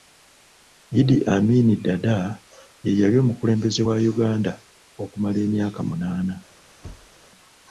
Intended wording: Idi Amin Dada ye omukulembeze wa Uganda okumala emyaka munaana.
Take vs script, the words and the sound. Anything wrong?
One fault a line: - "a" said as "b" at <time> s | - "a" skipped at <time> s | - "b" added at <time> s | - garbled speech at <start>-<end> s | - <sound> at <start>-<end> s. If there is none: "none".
- "yali" added at 3.0 s
- thud at 6.8-7.3 s